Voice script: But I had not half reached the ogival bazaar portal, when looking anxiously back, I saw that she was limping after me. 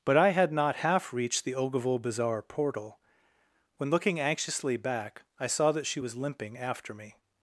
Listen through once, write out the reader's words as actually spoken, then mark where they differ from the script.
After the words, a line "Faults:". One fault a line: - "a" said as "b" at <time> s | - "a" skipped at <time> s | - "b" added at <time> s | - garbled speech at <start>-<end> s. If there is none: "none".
But I had not half reached the ogival bazaar portal, when looking anxiously back, I saw that she was limping after me.
Faults:
none